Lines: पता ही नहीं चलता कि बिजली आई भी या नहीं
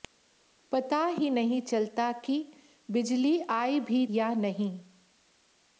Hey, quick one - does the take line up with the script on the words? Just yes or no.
yes